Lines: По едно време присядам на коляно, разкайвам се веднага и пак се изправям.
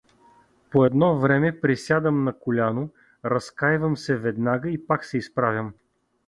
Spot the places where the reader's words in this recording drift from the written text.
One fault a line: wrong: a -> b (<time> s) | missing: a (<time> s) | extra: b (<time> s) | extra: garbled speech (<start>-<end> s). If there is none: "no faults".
no faults